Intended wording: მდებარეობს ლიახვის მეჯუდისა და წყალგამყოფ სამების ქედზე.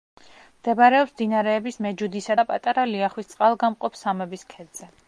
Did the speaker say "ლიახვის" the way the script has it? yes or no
no